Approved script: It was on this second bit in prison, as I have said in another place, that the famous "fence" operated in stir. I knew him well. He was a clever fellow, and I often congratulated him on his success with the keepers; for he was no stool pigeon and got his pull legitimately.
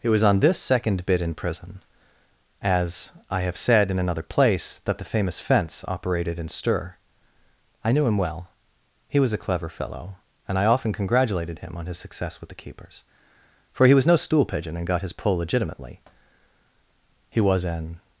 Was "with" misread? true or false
false